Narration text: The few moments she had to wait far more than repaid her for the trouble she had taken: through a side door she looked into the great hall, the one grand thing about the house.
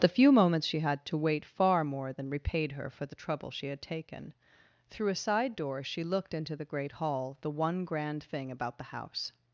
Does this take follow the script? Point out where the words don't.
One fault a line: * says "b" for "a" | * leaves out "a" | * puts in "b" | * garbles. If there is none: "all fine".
all fine